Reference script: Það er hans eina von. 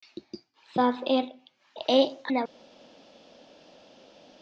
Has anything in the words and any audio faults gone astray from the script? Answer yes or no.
yes